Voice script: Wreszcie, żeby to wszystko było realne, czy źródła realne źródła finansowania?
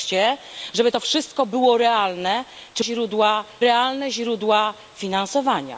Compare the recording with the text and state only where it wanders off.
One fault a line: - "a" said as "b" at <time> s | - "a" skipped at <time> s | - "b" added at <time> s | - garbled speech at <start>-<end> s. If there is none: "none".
none